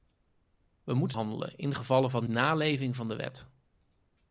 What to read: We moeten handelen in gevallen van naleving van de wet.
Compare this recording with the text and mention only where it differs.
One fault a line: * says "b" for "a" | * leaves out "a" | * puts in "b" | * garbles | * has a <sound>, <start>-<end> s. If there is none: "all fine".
all fine